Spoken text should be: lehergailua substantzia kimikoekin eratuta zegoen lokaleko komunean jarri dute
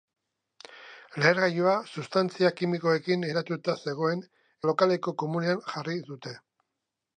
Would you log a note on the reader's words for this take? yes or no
no